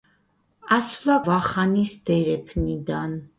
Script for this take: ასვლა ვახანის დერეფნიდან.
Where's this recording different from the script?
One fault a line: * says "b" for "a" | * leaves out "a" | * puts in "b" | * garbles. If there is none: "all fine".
all fine